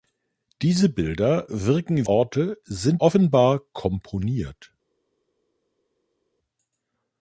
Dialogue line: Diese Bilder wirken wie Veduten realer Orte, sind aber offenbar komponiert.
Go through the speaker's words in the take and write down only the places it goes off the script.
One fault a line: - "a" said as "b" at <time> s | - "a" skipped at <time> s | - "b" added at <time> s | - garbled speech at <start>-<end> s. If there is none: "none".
- "wie Veduten realer" skipped at 2.1 s
- "aber" skipped at 3.0 s